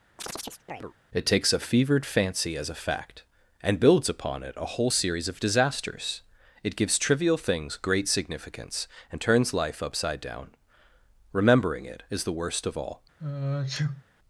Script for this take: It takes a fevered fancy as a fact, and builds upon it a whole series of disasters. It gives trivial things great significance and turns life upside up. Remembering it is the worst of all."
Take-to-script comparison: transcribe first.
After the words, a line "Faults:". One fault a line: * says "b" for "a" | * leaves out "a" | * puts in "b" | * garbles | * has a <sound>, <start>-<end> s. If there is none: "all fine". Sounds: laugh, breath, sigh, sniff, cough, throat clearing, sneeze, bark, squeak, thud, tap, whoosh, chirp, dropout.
It takes a fevered fancy as a fact, and builds upon it a whole series of disasters. It gives trivial things great significance and turns life upside down. Remembering it is the worst of all."
Faults:
* has a chirp, 0.2-0.9 s
* says "down" for "up"
* has a sneeze, 13.2-14.0 s